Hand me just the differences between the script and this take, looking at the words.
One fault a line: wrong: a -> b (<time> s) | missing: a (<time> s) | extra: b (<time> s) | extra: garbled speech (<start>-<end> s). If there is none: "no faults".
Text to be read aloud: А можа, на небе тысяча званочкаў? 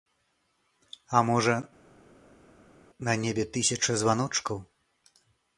no faults